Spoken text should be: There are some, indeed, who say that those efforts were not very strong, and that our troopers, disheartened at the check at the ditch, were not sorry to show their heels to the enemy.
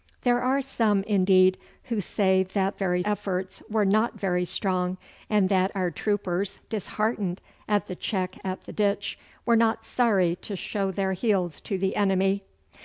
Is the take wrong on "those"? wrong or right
wrong